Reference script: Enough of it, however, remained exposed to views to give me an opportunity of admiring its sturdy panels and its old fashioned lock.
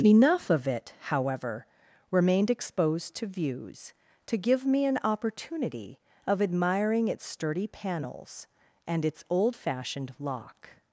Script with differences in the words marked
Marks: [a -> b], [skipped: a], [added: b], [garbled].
Enough of it, however, remained exposed to views to give me an opportunity of admiring its sturdy panels and its old fashioned lock.